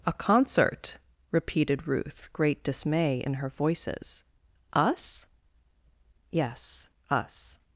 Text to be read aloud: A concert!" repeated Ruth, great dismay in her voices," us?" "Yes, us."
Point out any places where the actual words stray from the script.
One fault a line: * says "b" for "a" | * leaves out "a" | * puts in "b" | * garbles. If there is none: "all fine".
all fine